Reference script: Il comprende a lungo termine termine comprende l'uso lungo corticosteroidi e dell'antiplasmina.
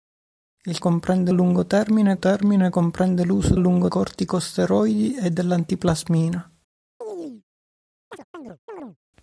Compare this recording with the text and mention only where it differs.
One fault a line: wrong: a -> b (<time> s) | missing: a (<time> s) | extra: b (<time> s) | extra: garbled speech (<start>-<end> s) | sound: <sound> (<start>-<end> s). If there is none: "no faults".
sound: chirp (7.0-7.4 s)
sound: chirp (8.1-9.0 s)